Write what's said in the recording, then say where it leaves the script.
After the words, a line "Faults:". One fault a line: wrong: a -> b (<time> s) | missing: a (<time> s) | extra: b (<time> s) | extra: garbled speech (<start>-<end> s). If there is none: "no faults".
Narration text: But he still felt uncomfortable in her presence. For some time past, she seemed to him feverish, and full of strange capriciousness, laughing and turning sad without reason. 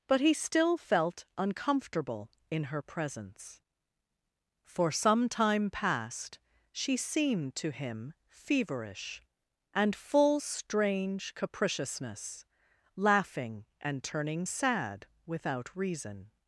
But he still felt uncomfortable in her presence. For some time past, she seemed to him feverish, and full strange capriciousness, laughing and turning sad without reason.
Faults:
missing: of (10.4 s)